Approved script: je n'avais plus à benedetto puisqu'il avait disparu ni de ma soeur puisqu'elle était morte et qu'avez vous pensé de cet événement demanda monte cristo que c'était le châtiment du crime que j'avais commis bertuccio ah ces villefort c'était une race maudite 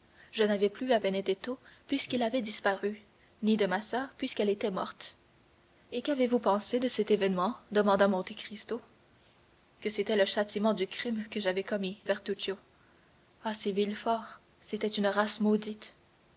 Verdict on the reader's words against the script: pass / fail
pass